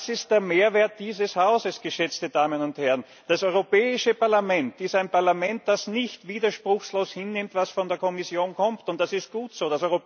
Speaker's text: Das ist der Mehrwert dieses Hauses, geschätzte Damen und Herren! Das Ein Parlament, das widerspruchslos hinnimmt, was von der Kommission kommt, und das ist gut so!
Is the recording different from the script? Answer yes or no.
yes